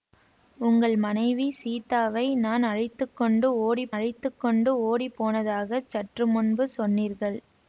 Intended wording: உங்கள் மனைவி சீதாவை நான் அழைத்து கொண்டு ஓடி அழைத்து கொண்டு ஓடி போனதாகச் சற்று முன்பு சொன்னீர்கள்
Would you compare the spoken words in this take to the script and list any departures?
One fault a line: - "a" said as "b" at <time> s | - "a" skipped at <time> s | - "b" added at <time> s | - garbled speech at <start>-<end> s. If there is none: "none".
none